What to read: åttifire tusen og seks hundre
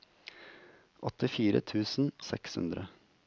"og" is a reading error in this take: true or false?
true